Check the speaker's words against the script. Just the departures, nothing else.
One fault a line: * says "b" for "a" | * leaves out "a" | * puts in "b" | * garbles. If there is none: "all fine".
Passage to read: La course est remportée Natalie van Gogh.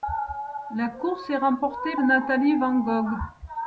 all fine